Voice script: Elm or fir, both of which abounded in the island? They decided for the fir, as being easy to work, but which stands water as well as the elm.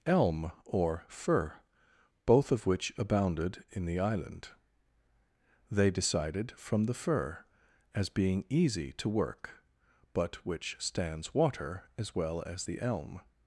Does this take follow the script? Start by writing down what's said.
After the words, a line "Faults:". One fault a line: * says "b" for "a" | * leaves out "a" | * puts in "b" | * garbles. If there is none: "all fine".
Elm or fir, both of which abounded in the island? They decided from the fir, as being easy to work, but which stands water as well as the elm.
Faults:
* says "from" for "for"